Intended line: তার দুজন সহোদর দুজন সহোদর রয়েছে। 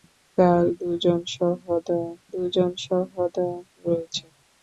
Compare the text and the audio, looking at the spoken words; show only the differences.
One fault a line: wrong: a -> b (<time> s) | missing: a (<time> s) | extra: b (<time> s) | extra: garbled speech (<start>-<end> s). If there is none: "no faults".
no faults